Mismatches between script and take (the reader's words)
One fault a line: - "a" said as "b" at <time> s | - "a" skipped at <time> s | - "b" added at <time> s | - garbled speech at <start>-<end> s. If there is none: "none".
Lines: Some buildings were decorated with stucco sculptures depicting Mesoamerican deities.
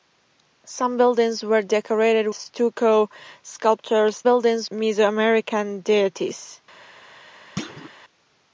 - "with" skipped at 2.3 s
- "depicting" said as "buildings" at 4.2 s